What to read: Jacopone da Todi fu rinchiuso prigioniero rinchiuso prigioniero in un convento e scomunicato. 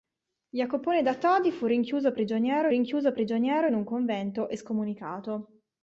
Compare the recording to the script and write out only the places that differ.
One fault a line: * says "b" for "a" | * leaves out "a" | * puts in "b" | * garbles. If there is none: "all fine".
all fine